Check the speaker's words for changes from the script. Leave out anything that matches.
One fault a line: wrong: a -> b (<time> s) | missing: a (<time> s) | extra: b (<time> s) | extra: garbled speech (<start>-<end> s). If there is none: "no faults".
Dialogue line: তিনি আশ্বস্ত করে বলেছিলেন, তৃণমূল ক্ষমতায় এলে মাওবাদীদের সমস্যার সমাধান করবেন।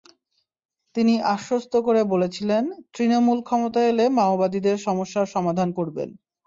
no faults